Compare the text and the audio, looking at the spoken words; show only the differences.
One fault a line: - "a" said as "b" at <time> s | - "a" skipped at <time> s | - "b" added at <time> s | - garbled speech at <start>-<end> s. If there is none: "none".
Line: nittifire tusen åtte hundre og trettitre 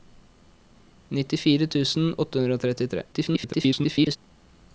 - garbled speech at 3.1-4.2 s